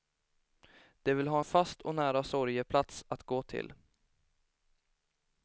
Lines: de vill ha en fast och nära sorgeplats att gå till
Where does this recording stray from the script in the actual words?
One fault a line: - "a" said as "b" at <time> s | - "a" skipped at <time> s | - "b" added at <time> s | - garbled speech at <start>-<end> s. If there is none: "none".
none